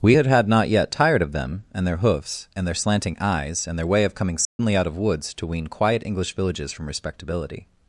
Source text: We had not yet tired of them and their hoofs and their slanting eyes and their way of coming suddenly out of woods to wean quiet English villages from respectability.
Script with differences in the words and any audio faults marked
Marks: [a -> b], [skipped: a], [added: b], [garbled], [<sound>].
We had [added: had] not yet tired of them and their hoofs and their slanting eyes and their way of coming suddenly [dropout] out of woods to wean quiet English villages from respectability.